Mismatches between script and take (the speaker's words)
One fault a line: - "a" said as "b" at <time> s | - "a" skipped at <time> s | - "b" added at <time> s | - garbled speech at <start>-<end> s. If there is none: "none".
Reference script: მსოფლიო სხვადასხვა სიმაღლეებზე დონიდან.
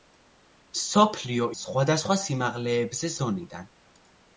none